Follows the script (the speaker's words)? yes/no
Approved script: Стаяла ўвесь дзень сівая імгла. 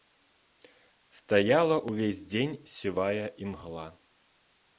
yes